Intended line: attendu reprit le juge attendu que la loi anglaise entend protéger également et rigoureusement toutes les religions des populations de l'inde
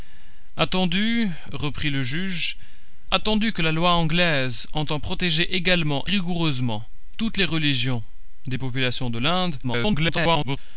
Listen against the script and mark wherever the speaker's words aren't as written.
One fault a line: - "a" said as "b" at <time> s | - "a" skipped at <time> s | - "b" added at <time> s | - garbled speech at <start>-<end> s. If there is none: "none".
- "et" skipped at 6.0 s
- garbled speech at 9.6-10.6 s